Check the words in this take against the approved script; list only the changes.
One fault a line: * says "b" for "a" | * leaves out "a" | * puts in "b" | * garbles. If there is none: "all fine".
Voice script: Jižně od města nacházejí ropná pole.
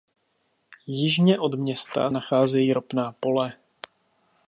all fine